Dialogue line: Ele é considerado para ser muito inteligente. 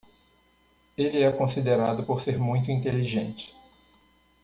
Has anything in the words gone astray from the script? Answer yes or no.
yes